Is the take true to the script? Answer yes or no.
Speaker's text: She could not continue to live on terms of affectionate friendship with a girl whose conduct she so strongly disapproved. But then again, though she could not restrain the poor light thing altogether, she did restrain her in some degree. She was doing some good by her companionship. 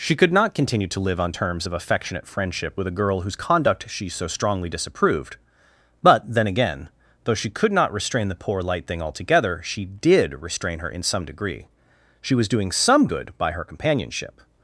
yes